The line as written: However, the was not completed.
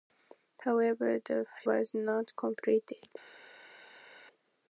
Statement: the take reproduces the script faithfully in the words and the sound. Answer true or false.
true